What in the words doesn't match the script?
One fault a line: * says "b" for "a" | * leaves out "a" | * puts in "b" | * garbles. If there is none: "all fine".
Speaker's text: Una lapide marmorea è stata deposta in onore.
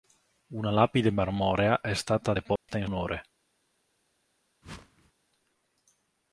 all fine